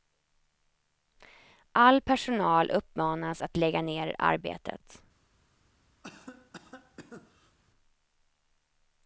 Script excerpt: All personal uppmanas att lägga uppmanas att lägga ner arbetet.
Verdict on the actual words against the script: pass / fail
fail